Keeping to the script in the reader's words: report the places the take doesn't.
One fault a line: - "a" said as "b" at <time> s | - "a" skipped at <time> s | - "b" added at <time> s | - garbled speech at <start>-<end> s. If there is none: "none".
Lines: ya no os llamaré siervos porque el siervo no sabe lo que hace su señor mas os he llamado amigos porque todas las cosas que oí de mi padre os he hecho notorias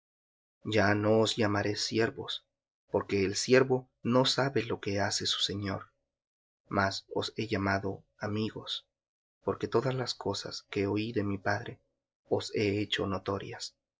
none